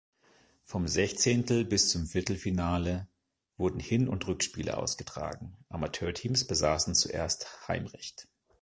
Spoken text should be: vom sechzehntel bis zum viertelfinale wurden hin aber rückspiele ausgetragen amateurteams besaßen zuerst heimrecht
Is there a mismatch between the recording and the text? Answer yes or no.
yes